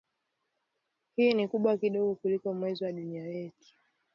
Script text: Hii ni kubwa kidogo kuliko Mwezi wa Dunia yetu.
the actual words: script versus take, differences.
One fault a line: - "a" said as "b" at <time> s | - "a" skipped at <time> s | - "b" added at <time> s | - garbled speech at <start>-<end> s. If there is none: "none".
none